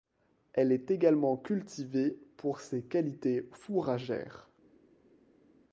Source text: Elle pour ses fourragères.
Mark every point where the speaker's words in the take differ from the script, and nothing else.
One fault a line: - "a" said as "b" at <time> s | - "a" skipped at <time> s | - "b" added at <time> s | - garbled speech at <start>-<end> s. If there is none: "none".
- "est également cultivée" added at 0.7 s
- "qualités" added at 2.8 s